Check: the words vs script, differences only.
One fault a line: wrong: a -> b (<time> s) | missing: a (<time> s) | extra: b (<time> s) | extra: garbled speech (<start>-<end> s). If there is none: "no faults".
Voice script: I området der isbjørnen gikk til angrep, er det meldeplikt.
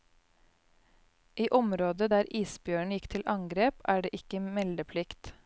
extra: ikke (4.2 s)